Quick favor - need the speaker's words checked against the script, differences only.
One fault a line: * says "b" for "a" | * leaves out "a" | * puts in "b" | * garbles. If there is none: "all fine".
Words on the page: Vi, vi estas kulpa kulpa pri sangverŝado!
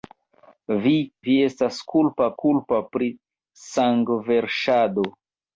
all fine